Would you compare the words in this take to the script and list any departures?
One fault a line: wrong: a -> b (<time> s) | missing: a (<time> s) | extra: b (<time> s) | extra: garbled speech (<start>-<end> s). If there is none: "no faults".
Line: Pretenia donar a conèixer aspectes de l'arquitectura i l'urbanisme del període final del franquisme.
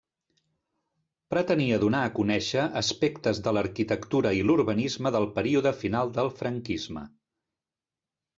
no faults